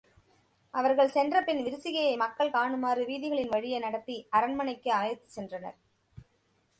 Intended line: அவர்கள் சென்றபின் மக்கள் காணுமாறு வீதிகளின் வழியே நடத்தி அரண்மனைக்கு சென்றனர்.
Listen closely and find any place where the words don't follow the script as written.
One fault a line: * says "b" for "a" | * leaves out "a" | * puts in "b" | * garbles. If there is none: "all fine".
* puts in "விரிசிகையை"
* puts in "அழைத்துச்"